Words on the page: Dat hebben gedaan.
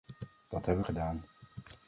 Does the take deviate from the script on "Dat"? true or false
false